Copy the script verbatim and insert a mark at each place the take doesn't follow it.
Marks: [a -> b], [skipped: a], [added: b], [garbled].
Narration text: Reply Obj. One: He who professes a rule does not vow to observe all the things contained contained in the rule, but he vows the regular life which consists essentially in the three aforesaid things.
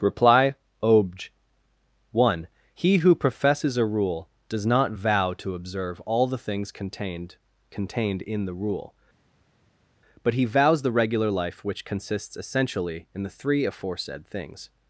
Reply Obj. One: He who professes a rule does not vow to observe all the things contained contained in the rule, but he vows the regular life which consists essentially in the three aforesaid things.